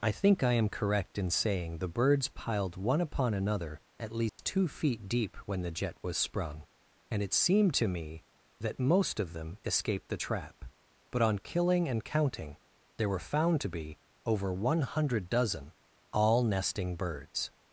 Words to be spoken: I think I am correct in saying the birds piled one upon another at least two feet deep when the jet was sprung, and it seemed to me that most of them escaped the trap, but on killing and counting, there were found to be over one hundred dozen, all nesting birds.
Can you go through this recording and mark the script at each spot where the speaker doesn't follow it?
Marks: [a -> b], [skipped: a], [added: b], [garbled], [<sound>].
I think I am correct in saying the birds piled one upon another at least [dropout] two feet deep when the jet was sprung, and it seemed to me that most of them escaped the trap, but on killing and counting, there were found to be over one hundred dozen, all nesting birds.